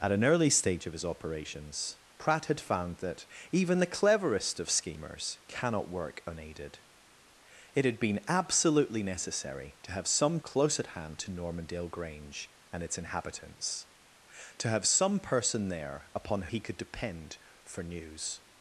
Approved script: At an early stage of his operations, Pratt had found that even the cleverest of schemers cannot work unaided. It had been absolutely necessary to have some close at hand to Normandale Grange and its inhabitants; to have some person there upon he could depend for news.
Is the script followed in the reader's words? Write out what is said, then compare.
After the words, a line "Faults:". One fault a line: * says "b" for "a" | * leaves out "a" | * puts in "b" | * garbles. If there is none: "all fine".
At an early stage of his operations, Pratt had found that even the cleverest of schemers cannot work unaided. It had been absolutely necessary to have some close at hand to Normandale Grange and its inhabitants; to have some person there upon he could depend for news.
Faults:
all fine